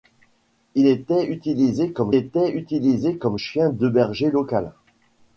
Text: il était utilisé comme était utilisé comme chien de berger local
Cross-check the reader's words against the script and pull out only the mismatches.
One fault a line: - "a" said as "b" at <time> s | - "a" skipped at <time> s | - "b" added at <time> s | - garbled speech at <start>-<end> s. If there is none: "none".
none